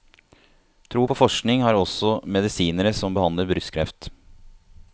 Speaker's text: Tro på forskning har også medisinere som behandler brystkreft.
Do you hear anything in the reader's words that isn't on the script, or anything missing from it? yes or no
no